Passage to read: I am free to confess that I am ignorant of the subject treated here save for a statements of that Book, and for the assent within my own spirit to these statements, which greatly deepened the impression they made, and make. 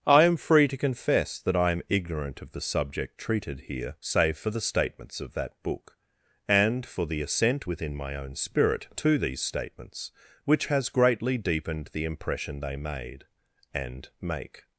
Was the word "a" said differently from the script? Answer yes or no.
yes